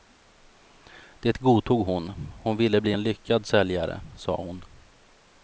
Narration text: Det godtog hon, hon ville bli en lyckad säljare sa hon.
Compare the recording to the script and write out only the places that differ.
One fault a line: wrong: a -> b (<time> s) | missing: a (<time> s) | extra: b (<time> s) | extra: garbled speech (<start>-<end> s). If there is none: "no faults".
no faults